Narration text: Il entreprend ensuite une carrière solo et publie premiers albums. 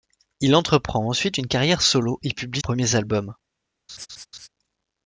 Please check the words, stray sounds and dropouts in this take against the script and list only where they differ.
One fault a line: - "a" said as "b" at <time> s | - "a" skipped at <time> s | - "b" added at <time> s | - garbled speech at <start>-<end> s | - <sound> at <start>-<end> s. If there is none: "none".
- laugh at 3.9-4.5 s